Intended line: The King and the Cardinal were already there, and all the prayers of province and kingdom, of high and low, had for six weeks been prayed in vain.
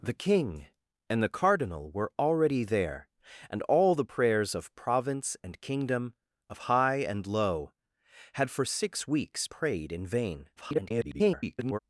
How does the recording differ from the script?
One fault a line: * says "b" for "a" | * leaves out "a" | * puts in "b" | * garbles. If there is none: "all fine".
* leaves out "been"
* garbles